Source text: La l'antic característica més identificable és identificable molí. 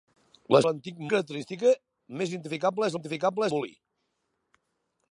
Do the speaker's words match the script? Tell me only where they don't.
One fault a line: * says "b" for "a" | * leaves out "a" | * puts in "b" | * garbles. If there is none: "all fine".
all fine